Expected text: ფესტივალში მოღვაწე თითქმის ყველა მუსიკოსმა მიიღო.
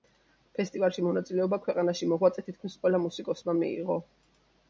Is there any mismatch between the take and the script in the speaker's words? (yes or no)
yes